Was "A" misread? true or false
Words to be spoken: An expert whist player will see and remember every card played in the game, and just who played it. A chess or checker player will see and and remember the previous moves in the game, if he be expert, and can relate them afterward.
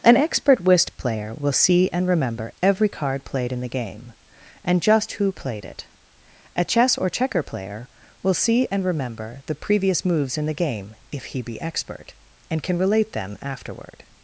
false